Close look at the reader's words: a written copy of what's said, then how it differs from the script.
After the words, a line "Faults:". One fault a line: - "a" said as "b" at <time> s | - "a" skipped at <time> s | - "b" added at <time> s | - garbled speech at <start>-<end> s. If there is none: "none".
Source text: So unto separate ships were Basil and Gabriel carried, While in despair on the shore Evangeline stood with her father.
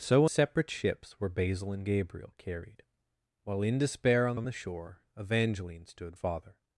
So separate ships were Basil and Gabriel carried, While in despair on on the shore Evangeline stood father.
Faults:
- "unto" skipped at 0.2 s
- "on" added at 4.3 s
- "with her" skipped at 6.1 s